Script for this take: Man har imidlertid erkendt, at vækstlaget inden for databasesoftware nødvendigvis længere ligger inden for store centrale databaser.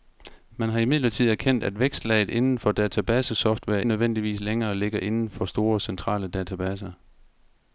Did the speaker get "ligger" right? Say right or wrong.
right